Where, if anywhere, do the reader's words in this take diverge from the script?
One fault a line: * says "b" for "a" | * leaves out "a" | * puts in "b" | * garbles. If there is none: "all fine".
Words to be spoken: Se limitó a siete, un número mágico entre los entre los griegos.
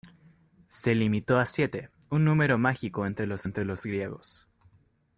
all fine